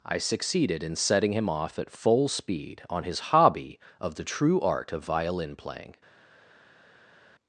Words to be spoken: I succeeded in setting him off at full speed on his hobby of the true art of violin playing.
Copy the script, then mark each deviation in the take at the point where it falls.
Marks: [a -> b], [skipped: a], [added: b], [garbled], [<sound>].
I succeeded in setting him off at full speed on his hobby of the true art of violin playing.